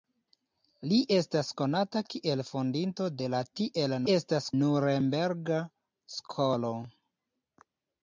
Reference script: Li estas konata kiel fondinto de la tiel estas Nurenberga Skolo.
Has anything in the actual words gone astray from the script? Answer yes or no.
no